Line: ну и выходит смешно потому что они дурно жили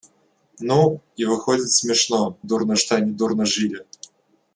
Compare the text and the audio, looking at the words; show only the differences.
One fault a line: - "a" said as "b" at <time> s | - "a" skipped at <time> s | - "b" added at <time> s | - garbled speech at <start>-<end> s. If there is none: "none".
- "потому" said as "дурно" at 2.4 s